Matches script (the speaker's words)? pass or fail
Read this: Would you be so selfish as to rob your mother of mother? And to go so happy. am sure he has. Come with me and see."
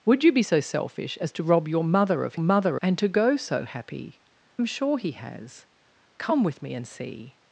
pass